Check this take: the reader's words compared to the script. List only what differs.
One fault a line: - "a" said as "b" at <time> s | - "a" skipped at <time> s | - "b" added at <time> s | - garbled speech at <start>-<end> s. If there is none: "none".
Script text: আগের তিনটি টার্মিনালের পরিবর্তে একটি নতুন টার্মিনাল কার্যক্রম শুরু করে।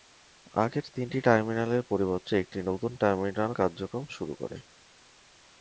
none